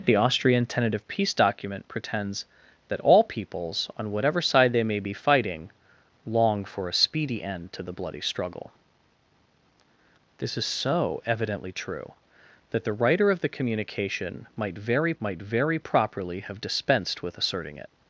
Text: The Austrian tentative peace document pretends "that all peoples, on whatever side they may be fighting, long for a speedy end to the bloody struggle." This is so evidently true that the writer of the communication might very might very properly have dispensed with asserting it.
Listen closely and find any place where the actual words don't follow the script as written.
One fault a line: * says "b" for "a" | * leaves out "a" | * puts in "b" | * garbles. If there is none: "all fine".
all fine